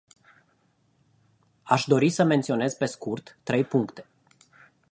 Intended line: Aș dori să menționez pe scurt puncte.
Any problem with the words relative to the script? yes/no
yes